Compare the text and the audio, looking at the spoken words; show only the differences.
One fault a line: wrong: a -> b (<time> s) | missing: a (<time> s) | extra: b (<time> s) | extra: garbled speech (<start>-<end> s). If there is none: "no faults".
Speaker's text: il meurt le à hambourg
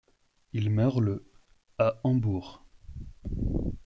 no faults